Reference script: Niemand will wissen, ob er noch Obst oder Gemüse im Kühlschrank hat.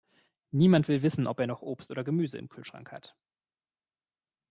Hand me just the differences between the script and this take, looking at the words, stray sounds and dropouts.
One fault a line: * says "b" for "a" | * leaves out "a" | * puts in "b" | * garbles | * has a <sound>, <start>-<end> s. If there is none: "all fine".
all fine